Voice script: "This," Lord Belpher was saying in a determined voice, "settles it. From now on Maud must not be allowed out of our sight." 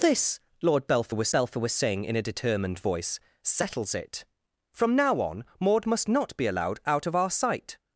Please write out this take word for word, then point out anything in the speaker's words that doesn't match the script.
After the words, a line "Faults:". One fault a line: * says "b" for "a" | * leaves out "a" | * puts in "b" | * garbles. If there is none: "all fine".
"This," Lord Belpher was Belpher was saying in a determined voice, "settles it. From now on Maud must not be allowed out of our sight."
Faults:
* puts in "Belpher was"